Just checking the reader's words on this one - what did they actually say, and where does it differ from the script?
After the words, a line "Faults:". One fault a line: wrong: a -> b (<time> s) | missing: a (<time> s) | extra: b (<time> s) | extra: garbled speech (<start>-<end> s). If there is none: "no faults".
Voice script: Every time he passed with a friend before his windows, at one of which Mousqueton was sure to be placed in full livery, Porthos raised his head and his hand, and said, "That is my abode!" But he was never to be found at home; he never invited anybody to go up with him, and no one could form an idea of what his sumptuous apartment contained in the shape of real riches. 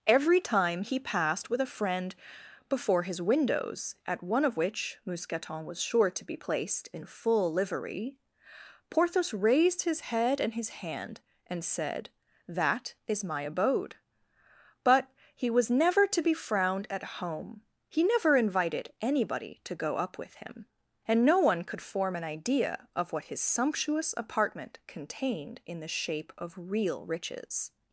Every time he passed with a friend before his windows, at one of which Mousqueton was sure to be placed in full livery, Porthos raised his head and his hand, and said, "That is my abode!" But he was never to be frowned at home; he never invited anybody to go up with him, and no one could form an idea of what his sumptuous apartment contained in the shape of real riches.
Faults:
wrong: found -> frowned (16.3 s)